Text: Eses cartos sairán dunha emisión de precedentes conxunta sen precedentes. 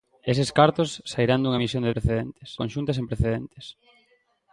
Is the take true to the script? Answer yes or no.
yes